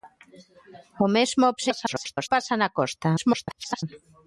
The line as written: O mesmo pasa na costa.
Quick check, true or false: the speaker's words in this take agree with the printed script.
false